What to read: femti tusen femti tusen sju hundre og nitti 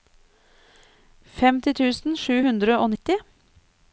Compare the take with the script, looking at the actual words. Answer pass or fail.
fail